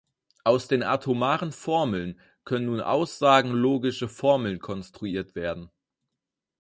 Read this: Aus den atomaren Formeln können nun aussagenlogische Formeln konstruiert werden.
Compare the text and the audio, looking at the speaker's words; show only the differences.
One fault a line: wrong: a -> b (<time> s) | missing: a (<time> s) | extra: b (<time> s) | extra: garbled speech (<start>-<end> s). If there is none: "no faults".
no faults